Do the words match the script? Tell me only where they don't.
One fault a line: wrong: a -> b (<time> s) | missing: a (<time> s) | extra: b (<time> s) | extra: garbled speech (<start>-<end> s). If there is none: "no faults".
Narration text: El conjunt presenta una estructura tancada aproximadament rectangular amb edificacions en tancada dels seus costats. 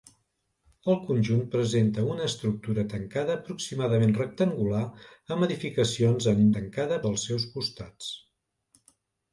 no faults